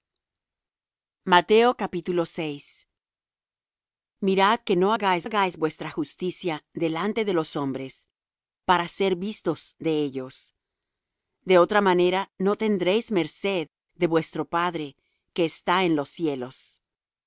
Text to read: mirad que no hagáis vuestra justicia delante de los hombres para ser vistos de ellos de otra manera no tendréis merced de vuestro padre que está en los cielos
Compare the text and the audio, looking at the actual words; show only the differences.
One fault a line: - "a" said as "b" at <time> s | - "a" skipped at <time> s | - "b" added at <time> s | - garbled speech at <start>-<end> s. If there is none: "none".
- "hagáis" added at 5.2 s